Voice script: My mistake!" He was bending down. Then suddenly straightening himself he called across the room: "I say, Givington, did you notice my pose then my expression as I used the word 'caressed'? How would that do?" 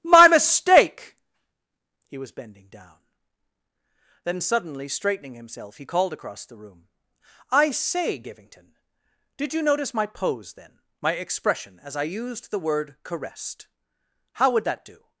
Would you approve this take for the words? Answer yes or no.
yes